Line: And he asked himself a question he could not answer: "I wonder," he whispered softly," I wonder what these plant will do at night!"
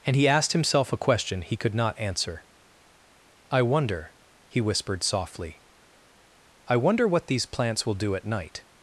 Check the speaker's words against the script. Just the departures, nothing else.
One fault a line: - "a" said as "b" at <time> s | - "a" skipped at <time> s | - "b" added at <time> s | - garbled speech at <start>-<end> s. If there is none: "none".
- "plant" said as "plants" at 7.5 s